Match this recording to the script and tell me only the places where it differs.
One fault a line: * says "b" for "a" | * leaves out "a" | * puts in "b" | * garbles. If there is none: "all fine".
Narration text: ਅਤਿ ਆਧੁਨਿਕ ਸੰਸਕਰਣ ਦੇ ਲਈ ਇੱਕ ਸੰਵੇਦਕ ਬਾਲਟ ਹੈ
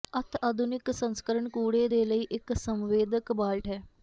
* puts in "ਕੂੜੇ"